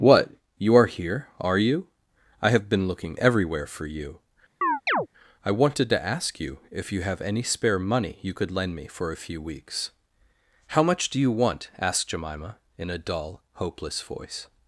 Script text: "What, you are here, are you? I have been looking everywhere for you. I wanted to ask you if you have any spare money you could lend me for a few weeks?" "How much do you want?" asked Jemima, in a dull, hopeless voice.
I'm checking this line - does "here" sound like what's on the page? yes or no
yes